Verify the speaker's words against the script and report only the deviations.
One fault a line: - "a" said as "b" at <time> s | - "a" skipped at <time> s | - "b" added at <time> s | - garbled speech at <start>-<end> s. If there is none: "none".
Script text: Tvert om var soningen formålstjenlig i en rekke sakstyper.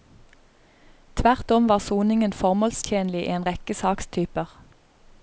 none